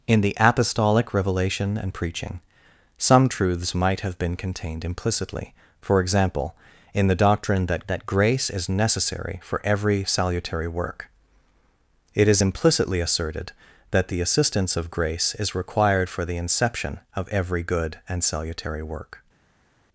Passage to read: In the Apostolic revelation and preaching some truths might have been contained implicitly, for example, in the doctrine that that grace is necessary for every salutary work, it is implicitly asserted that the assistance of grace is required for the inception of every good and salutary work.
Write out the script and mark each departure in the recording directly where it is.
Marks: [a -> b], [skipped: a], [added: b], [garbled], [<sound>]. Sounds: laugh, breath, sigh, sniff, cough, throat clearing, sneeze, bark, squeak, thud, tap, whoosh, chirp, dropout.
In the Apostolic revelation and preaching some truths might have been contained implicitly, for example, in the doctrine that that grace is necessary for every salutary work, it is implicitly asserted that the assistance of grace is required for the inception of every good and salutary work.